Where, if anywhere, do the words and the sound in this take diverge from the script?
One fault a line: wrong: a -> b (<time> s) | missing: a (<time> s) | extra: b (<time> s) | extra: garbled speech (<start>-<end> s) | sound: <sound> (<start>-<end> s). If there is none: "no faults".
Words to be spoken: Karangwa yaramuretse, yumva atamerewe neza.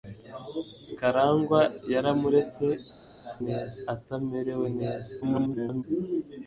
wrong: yumva -> neza (3.5 s)
extra: garbled speech (5.2-5.8 s)